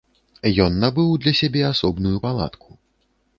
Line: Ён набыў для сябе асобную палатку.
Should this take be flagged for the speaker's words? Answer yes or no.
no